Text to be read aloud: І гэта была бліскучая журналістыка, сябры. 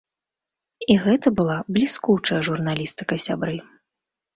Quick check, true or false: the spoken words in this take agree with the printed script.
true